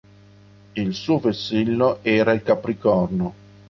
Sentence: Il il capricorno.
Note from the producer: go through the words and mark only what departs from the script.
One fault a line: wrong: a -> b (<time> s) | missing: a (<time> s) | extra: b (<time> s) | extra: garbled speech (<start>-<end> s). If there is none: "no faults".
extra: suo vessillo era (0.9 s)